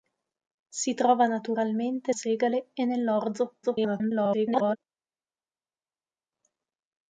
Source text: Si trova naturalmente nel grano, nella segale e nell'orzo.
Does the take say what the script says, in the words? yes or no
no